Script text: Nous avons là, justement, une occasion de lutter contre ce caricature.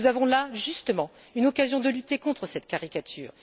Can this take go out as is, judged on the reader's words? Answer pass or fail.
fail